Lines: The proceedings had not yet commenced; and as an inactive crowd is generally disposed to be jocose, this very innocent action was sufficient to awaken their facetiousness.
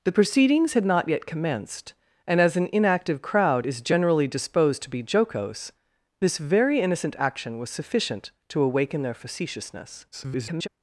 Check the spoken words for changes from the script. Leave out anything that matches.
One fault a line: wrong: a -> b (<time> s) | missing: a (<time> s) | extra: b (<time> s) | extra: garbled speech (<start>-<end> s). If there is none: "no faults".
extra: garbled speech (10.1-10.7 s)